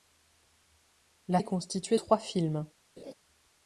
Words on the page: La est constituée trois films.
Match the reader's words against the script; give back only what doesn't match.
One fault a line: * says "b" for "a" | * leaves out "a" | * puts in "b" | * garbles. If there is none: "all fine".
all fine